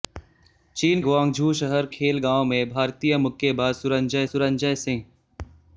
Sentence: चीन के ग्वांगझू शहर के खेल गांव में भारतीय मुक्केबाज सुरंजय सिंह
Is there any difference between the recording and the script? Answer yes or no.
yes